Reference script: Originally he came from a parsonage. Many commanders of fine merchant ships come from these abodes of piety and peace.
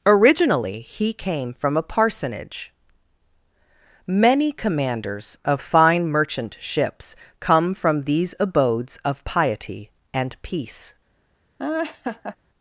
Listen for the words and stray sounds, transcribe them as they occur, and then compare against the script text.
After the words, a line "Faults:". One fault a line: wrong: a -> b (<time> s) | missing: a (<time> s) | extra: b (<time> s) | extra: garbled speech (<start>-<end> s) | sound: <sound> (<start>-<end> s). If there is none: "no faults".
Originally he came from a parsonage. Many commanders of fine merchant ships come from these abodes of piety and peace.
Faults:
sound: laugh (11.6-12.4 s)